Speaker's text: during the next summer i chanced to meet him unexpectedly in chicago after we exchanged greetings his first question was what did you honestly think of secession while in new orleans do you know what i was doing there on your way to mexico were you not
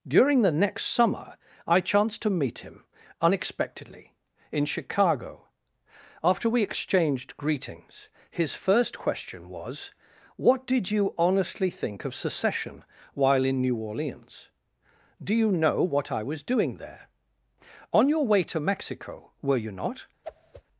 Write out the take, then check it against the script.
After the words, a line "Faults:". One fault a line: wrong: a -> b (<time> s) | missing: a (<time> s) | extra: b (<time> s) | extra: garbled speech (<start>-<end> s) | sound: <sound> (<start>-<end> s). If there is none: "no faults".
during the next summer i chanced to meet him unexpectedly in chicago after we exchanged greetings his first question was what did you honestly think of secession while in new orleans do you know what i was doing there on your way to mexico were you not
Faults:
sound: whoosh (20.2-20.6 s)